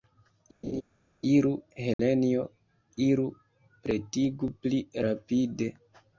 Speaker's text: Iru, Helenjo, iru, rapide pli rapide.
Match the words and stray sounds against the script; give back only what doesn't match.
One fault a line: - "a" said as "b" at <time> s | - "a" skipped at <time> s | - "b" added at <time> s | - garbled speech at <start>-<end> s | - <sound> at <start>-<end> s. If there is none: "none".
- laugh at 0.6-0.8 s
- dropout at 1.9-2.0 s
- "rapide" said as "pretigu" at 3.8 s